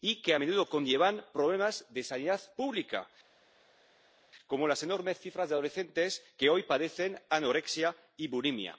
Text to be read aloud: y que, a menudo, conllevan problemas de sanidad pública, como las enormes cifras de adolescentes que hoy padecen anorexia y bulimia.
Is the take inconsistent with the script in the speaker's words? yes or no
no